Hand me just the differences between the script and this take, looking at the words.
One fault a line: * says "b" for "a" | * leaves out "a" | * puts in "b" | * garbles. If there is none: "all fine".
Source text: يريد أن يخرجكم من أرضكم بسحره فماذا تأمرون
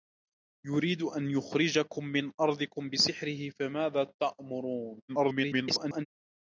* garbles